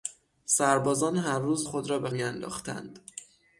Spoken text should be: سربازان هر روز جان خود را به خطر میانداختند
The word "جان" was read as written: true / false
false